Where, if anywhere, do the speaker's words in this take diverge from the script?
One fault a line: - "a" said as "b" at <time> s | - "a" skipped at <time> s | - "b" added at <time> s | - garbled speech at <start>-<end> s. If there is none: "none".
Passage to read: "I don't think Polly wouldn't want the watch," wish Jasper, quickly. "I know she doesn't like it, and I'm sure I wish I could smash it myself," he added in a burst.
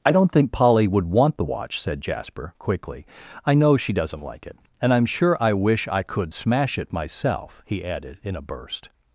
- "wouldn't" said as "would" at 0.9 s
- "wish" said as "said" at 1.8 s